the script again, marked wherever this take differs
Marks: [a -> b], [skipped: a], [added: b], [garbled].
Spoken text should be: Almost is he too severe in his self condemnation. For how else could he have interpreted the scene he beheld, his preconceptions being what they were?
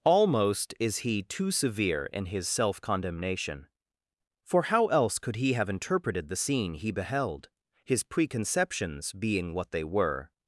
Almost is he too severe in his self condemnation. For how else could he have interpreted the scene he beheld, his preconceptions being what they were?